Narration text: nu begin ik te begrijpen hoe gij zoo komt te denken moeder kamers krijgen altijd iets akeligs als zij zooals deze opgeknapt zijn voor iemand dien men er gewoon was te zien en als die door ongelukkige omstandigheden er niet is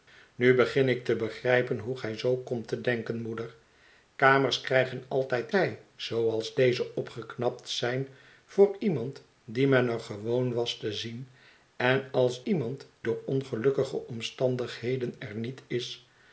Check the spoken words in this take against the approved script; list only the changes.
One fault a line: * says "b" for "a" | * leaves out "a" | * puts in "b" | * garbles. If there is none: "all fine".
* leaves out "iets akeligs als"
* says "iemand" for "die"